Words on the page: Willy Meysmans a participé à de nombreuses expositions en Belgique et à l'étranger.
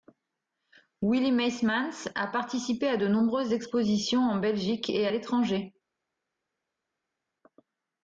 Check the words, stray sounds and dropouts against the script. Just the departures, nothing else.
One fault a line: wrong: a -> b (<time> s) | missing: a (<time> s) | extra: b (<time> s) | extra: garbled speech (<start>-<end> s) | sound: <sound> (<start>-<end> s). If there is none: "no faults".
no faults